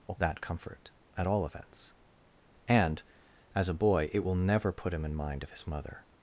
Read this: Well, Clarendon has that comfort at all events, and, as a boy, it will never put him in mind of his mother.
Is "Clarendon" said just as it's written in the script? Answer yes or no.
no